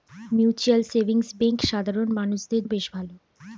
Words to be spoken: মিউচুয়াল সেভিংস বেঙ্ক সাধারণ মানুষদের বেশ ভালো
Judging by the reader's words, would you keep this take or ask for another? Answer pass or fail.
pass